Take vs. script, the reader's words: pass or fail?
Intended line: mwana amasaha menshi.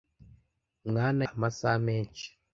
pass